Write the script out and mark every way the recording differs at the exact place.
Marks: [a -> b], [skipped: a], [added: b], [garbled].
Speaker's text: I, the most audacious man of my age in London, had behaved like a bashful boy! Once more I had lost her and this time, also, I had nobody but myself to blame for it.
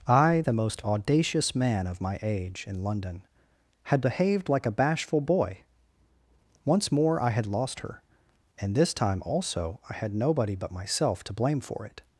I, the most audacious man of my age in London, had behaved like a bashful boy! Once more I had lost her and this time, also, I had nobody but myself to blame for it.